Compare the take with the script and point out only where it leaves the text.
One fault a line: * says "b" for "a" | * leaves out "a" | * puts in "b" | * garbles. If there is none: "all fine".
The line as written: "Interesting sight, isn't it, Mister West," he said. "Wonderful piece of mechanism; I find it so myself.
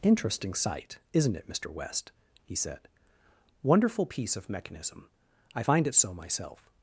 all fine